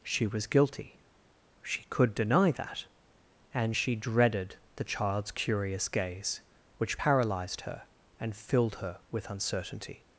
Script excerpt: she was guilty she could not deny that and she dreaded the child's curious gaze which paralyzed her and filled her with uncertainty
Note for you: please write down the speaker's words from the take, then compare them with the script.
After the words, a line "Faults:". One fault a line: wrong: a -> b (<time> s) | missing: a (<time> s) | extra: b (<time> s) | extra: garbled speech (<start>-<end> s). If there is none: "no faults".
she was guilty she could deny that and she dreaded the child's curious gaze which paralyzed her and filled her with uncertainty
Faults:
missing: not (2.1 s)